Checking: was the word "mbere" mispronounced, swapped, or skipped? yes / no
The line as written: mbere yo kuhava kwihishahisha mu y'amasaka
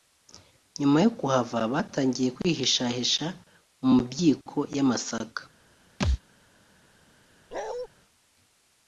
yes